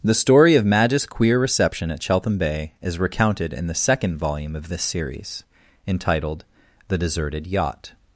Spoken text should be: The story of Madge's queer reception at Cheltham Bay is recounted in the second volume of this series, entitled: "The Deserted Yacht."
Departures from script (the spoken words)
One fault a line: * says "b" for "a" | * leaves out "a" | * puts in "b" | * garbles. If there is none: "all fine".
all fine